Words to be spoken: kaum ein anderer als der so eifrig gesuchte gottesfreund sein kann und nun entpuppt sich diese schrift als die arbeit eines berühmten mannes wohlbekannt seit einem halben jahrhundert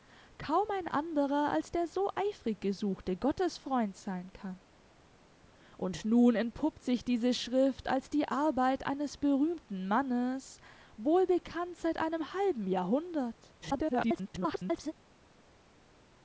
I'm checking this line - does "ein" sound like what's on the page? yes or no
yes